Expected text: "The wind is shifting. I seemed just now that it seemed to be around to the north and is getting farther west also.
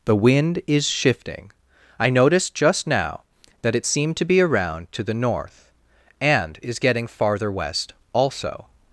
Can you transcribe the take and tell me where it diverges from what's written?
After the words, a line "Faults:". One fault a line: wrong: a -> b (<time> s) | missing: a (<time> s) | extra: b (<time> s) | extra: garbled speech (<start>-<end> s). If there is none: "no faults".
"The wind is shifting. I noticed just now that it seemed to be around to the north and is getting farther west also.
Faults:
wrong: seemed -> noticed (2.1 s)